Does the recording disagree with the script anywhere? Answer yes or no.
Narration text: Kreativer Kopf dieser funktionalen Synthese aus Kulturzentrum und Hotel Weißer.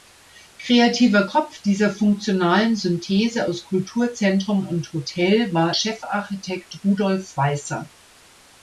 yes